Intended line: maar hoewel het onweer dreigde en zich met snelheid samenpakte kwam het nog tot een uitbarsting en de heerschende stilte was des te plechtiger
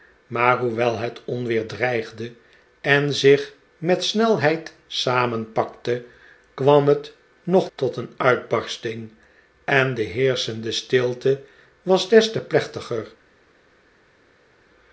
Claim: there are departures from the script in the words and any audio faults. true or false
false